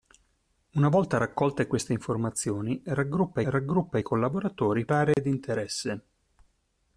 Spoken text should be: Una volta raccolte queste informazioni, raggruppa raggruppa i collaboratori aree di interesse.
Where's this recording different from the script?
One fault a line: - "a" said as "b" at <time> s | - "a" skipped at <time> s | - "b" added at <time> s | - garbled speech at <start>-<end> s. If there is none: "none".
none